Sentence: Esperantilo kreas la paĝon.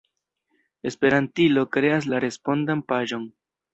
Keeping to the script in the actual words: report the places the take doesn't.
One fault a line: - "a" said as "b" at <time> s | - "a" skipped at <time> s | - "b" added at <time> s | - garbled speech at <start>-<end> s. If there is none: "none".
- "respondan" added at 2.3 s